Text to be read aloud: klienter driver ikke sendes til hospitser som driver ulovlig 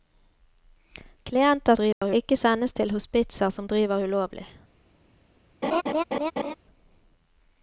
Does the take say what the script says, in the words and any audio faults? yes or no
no